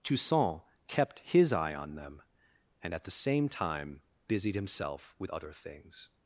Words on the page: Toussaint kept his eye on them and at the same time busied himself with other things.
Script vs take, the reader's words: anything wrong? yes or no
no